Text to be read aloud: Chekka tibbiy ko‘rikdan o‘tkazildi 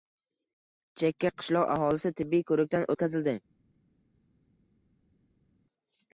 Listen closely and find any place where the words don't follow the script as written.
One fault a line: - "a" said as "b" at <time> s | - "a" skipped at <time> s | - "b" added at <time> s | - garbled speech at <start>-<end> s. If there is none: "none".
- "qishloq aholisi" added at 1.4 s